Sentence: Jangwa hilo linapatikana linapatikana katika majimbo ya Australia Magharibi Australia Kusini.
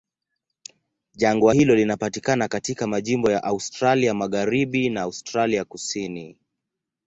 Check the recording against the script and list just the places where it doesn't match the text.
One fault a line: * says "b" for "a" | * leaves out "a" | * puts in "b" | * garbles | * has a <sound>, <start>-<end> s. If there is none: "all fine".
* leaves out "linapatikana"
* puts in "na"